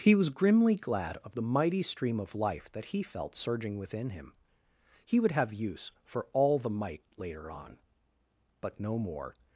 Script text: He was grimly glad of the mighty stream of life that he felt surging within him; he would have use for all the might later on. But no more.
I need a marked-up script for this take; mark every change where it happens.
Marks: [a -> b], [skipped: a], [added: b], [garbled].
He was grimly glad of the mighty stream of life that he felt surging within him; he would have use for all the might later on. But no more.